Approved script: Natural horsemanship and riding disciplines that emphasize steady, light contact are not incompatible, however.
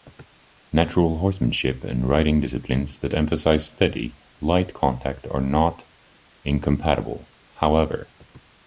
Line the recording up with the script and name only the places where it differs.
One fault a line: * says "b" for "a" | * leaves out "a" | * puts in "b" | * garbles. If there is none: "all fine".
all fine